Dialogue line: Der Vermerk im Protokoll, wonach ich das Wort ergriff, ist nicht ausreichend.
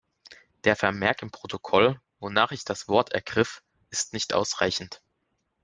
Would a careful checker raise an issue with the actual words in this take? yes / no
no